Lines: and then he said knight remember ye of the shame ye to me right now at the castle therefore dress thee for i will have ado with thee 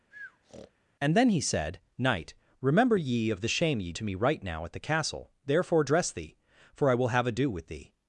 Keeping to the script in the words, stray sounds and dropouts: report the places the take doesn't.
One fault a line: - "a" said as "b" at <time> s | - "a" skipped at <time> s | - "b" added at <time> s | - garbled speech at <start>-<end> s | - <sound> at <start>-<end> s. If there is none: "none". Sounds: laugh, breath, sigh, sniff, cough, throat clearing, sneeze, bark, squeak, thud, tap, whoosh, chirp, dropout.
- breath at 0.1-0.7 s